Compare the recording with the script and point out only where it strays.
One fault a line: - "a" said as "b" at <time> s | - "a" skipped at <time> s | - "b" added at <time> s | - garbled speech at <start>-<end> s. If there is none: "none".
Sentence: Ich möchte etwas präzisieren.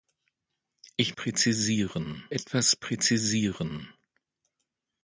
- "möchte" said as "präzisieren" at 1.1 s